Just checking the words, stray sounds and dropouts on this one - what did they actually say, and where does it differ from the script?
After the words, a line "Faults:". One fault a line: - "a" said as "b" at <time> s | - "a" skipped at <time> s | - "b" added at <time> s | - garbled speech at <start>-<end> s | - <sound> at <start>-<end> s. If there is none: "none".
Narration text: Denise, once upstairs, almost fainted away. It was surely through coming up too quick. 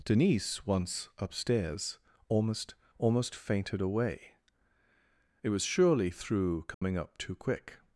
Denise, once upstairs, almost almost fainted away. It was surely through coming up too quick.
Faults:
- "almost" added at 3.0 s
- dropout at 6.7-6.8 s